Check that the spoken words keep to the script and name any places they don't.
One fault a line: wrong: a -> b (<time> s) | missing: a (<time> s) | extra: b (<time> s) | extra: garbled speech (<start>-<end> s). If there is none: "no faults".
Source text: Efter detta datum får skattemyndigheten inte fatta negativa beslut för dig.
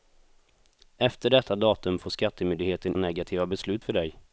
missing: inte fatta (3.0 s)